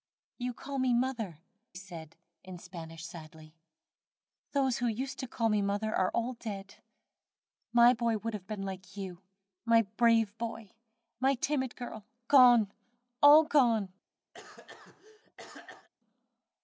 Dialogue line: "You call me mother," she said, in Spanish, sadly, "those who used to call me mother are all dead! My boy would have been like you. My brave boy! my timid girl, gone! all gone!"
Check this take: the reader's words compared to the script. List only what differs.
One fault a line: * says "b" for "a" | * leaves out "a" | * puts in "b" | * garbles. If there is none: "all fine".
* leaves out "she"